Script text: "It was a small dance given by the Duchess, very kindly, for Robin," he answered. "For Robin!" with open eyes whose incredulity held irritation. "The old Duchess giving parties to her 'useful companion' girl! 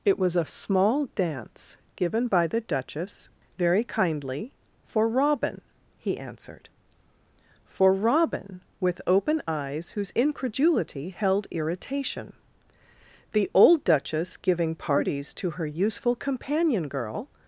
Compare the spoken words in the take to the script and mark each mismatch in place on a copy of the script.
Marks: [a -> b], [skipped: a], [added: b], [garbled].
"It was a small dance given by the Duchess, very kindly, for Robin," he answered. "For Robin!" with open eyes whose incredulity held irritation. "The old Duchess giving parties to her 'useful companion' girl!